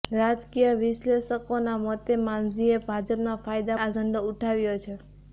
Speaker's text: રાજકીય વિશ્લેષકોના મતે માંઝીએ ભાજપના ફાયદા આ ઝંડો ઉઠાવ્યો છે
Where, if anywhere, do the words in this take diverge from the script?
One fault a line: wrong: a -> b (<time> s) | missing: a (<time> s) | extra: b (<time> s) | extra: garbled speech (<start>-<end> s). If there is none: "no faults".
no faults